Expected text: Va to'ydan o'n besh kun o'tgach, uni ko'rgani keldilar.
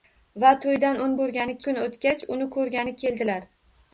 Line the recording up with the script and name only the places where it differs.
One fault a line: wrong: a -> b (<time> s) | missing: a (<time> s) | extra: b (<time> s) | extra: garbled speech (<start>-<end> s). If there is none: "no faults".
wrong: besh -> ko'rgani (1.2 s)